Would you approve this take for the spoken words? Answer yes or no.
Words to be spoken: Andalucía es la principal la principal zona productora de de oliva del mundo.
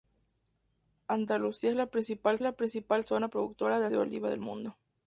yes